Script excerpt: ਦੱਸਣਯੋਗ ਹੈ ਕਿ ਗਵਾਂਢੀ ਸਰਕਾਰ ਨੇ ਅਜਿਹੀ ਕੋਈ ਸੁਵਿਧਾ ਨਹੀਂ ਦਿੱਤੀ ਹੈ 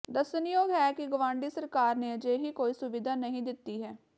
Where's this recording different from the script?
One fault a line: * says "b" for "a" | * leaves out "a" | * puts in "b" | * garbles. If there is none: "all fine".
all fine